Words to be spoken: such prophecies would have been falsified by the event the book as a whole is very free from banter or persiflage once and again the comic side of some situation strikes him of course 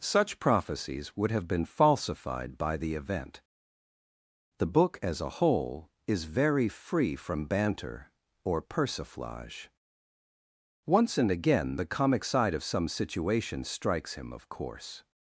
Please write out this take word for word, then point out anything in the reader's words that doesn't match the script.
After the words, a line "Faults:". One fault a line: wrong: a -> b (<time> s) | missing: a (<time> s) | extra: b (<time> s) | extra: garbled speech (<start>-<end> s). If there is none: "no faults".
such prophecies would have been falsified by the event the book as a whole is very free from banter or persiflage once and again the comic side of some situation strikes him of course
Faults:
no faults